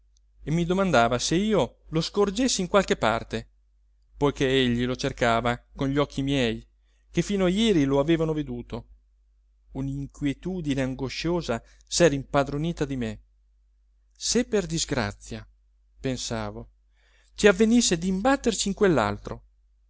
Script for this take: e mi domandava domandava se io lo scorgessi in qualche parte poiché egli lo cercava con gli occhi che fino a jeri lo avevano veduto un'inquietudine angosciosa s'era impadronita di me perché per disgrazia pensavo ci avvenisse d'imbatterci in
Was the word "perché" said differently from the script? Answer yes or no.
yes